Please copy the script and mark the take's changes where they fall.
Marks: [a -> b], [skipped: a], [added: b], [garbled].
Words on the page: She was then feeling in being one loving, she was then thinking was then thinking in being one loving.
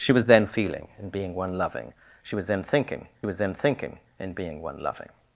She was then feeling in being one loving, she was then thinking was then thinking in being one loving.